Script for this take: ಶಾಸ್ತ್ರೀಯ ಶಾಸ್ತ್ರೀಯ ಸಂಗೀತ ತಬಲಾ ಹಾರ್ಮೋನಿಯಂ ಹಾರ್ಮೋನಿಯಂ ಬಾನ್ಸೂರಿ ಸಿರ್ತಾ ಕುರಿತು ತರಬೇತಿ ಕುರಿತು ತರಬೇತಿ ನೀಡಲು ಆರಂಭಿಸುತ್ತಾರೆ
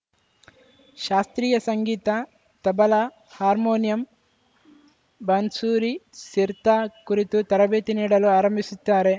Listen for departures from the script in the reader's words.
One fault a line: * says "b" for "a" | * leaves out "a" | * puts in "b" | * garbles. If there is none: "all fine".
* leaves out "ಶಾಸ್ತ್ರೀಯ"
* leaves out "ಹಾರ್ಮೋನಿಯಂ"
* leaves out "ಕುರಿತು ತರಬೇತಿ"